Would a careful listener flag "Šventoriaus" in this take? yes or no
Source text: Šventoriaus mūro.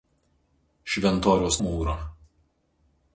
no